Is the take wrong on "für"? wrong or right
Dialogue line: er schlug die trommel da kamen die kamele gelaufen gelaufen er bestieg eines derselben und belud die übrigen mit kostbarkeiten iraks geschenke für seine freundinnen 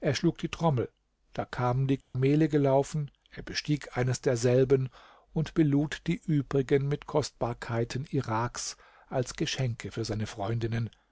right